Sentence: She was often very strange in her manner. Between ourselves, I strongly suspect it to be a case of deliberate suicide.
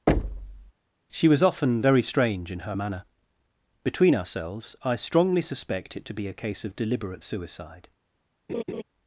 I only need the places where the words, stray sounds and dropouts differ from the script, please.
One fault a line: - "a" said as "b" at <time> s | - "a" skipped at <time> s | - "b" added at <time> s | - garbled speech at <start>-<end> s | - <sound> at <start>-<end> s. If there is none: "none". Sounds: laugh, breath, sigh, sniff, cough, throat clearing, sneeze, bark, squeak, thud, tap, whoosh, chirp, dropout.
- thud at 0.1-0.7 s
- laugh at 8.5-8.8 s